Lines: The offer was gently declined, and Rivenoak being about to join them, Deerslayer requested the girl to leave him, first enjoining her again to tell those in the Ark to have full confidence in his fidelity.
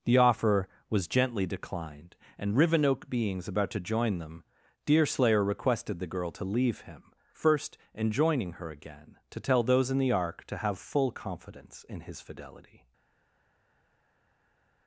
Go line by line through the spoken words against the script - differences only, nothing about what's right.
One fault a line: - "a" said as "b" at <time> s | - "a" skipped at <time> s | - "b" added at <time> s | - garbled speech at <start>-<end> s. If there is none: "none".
- "being" said as "beings" at 3.1 s